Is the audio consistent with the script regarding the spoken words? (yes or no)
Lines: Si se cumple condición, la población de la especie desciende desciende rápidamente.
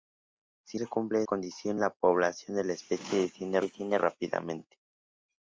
yes